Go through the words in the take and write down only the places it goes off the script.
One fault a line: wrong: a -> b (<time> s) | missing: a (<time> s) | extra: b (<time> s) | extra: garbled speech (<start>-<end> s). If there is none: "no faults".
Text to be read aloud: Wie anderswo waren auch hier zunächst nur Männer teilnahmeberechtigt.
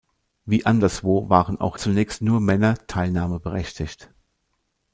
missing: hier (1.8 s)